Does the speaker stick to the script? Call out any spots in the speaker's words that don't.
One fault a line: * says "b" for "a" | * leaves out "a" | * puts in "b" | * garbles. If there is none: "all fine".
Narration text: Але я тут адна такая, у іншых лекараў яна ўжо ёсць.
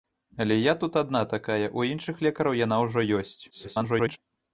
* garbles